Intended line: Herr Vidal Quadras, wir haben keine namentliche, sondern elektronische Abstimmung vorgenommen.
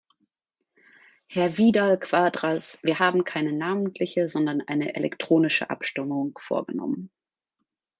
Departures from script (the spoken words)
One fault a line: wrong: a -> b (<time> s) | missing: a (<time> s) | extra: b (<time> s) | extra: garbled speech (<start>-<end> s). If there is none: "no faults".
extra: eine (4.6 s)